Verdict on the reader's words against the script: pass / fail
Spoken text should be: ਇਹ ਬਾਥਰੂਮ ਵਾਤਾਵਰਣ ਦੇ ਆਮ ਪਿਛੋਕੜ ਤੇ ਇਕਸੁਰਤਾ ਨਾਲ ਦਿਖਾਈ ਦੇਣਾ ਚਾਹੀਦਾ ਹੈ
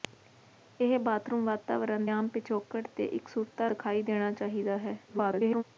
fail